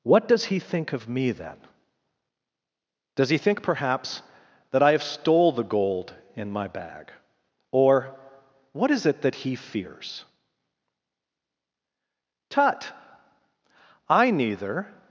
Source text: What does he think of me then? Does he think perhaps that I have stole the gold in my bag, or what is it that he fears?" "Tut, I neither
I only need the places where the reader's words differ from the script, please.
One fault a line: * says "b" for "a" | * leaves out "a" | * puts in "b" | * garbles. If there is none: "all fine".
all fine